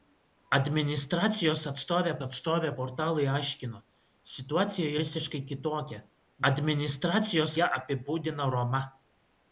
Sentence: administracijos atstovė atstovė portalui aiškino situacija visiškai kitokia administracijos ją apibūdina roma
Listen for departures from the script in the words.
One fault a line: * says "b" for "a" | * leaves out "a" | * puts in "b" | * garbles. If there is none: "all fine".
all fine